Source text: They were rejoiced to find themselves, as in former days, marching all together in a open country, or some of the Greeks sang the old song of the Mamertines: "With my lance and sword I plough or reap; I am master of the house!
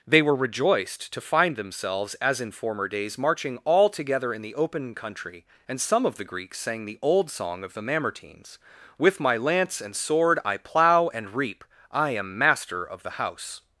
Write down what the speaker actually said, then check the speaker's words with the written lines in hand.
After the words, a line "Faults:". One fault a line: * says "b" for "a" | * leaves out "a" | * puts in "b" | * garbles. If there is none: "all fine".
They were rejoiced to find themselves, as in former days, marching all together in the open country, and some of the Greeks sang the old song of the Mamertines: "With my lance and sword I plough and reap; I am master of the house!
Faults:
* says "the" for "a"
* says "and" for "or"
* says "and" for "or"